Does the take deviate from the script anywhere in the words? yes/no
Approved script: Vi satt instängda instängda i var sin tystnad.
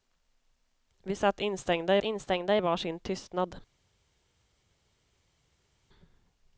no